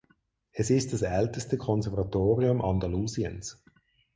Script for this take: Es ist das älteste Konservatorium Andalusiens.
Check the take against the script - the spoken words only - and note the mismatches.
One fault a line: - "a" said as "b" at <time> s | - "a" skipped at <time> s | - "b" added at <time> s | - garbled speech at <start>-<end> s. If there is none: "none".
none